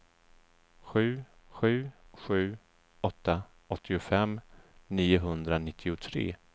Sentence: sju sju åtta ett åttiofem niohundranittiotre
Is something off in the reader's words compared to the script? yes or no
yes